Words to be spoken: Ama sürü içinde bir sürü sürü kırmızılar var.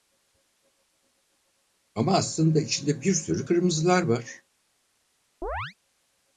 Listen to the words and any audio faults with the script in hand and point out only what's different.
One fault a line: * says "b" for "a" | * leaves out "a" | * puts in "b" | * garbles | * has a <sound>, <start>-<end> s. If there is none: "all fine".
* says "aslında" for "sürü"
* leaves out "sürü"
* has a chirp, 5.4-5.7 s